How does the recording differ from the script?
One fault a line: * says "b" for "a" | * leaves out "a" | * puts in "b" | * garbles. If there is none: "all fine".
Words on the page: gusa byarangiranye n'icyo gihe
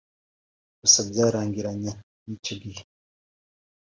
all fine